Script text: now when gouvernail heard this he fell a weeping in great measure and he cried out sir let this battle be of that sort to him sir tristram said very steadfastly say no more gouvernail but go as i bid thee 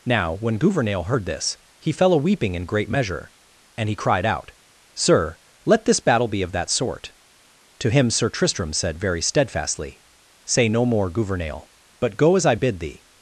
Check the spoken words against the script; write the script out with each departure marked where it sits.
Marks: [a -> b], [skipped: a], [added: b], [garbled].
now when gouvernail heard this he fell a weeping in great measure and he cried out sir let this battle be of that sort to him sir tristram said very steadfastly say no more gouvernail but go as i bid thee